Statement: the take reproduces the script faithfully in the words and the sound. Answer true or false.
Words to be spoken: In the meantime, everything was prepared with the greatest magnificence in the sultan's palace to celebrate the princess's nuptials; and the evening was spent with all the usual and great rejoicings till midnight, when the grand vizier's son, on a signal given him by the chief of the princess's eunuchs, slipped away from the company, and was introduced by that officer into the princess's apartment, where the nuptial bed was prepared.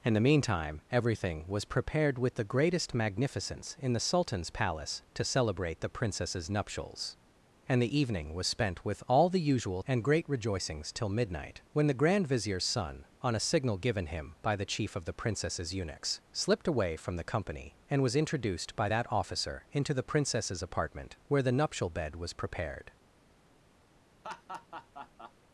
false